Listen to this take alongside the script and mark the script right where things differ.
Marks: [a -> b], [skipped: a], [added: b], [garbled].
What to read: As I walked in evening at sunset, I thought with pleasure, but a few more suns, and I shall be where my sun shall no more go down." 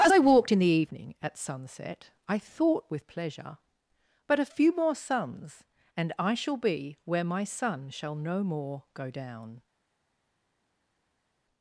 As I walked in [added: the] evening at sunset, I thought with pleasure, but a few more suns, and I shall be where my sun shall no more go down."